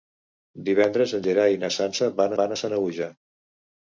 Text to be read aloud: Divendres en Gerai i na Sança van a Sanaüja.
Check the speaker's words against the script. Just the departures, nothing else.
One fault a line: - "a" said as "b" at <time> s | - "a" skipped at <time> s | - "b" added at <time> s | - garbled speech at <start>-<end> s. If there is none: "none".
- "van" added at 2.4 s